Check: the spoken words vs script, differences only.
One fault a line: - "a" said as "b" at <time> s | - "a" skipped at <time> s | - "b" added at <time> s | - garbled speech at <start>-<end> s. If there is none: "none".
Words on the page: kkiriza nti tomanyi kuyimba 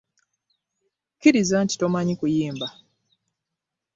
none